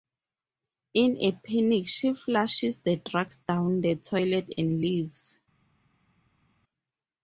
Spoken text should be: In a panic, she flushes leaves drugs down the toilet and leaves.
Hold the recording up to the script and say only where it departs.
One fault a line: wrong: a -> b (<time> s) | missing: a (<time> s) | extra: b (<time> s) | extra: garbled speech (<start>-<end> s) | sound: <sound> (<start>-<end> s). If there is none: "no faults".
wrong: leaves -> the (2.8 s)